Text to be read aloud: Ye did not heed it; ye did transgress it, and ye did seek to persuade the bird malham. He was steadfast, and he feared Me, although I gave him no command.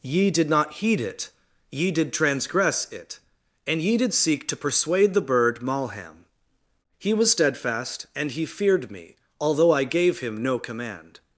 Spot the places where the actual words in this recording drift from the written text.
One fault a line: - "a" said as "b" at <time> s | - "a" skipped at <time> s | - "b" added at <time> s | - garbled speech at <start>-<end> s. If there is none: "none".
none